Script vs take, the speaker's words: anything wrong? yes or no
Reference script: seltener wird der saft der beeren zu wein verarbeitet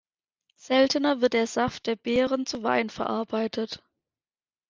no